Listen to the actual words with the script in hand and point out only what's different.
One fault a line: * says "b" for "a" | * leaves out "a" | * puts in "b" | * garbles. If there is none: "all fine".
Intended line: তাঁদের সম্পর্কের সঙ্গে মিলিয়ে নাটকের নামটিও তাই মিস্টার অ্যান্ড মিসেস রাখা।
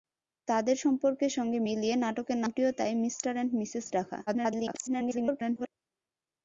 * garbles